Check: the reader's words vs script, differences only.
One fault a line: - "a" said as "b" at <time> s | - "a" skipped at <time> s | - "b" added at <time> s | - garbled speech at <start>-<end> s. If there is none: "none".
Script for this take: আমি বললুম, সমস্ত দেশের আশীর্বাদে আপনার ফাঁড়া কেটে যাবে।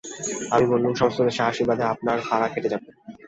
none